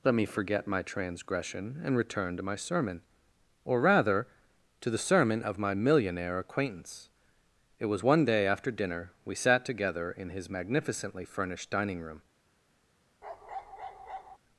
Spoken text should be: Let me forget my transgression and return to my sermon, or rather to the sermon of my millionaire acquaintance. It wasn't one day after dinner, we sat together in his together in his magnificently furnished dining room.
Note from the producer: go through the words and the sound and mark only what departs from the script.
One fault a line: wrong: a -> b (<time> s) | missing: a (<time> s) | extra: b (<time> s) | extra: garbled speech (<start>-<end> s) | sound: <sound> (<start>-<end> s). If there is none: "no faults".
wrong: wasn't -> was (7.8 s)
missing: together in his (10.5 s)
sound: bark (13.2-14.4 s)